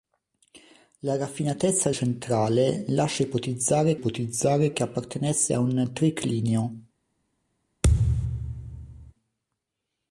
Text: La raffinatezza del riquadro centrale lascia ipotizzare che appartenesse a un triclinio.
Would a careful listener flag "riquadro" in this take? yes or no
yes